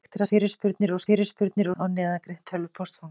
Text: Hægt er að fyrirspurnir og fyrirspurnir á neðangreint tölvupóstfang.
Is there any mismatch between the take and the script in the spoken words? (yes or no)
no